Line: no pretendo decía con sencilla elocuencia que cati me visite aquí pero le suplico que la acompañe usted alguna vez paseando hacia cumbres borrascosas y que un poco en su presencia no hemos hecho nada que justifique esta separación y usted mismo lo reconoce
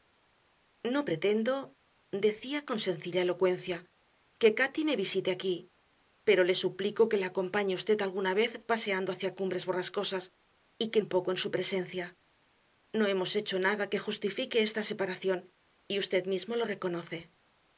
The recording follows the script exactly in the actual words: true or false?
true